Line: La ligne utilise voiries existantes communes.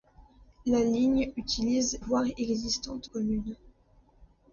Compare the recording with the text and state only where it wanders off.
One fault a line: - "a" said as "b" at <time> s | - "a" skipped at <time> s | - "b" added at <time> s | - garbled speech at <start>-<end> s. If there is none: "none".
none